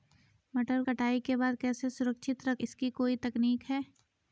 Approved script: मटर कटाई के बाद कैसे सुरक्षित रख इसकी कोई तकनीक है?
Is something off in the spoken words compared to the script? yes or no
no